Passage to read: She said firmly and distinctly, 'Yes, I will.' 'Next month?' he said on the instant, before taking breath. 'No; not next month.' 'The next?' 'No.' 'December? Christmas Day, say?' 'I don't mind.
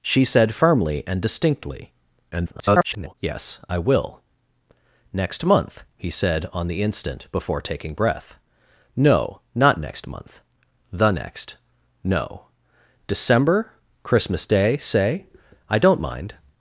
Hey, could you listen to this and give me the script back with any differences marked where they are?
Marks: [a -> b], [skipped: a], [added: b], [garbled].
She said firmly and distinctly, [garbled] 'Yes, I will.' 'Next month?' he said on the instant, before taking breath. 'No; not next month.' 'The next?' 'No.' 'December? Christmas Day, say?' 'I don't mind.